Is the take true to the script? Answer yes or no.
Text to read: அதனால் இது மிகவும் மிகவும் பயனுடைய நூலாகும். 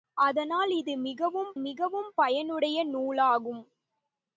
yes